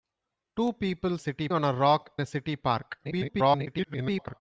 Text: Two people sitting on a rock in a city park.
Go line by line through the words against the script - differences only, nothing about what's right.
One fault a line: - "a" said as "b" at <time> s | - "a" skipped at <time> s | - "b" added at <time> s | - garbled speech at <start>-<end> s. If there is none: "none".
- "sitting" said as "city" at 1.2 s
- "in" skipped at 2.2 s
- garbled speech at 3.0-4.4 s